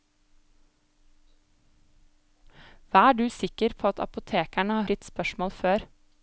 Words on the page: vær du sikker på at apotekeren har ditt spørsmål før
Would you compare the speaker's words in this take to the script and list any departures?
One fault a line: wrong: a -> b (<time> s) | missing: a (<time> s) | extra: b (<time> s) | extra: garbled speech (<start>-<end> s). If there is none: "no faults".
no faults